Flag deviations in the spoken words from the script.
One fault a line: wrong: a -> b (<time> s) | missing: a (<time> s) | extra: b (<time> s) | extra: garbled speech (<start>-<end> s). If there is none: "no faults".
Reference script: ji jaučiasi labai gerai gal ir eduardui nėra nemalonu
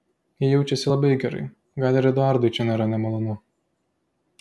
extra: čia (2.6 s)